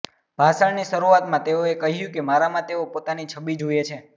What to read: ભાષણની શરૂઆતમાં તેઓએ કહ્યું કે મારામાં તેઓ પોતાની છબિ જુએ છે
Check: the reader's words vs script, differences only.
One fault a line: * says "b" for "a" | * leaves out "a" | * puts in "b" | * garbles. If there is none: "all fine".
all fine